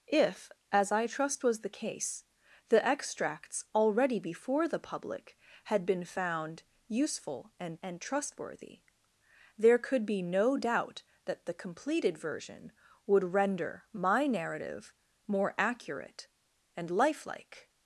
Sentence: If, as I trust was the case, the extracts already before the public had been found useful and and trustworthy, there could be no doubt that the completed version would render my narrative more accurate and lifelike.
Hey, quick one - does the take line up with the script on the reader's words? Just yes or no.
yes